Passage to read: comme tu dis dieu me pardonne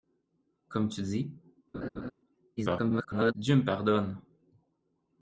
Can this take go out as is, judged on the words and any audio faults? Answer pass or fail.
fail